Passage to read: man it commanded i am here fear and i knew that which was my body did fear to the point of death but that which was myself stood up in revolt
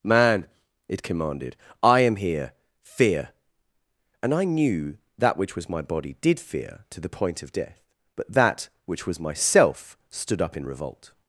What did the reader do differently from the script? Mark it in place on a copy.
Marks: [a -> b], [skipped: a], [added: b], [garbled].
man it commanded i am here fear and i knew that which was my body did fear to the point of death but that which was myself stood up in revolt